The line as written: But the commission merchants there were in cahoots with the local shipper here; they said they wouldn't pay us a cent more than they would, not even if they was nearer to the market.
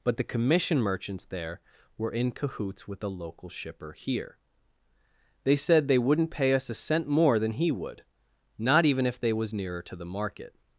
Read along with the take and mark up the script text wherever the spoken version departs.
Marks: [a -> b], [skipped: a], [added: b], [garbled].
But the commission merchants there were in cahoots with the local shipper here; they said they wouldn't pay us a cent more than [they -> he] would, not even if they was nearer to the market.